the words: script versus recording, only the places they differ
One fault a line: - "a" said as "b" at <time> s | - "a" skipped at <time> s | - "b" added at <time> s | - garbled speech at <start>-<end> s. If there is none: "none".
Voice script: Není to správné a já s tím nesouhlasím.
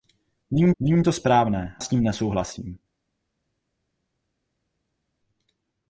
- "není" added at 0.8 s
- "a já" skipped at 1.8 s